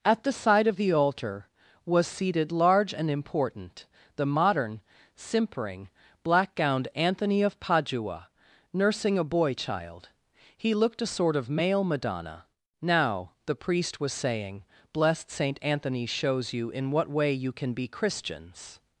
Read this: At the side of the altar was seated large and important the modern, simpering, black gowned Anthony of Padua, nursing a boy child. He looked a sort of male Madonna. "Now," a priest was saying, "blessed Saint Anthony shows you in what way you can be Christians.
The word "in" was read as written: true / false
true